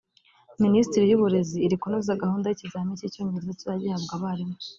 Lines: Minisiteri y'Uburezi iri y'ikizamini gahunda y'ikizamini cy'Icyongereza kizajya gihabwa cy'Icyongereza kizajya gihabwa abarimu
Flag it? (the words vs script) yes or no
yes